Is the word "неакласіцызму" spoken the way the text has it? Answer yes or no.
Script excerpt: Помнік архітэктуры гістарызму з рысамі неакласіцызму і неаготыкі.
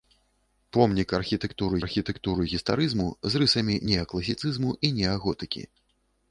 yes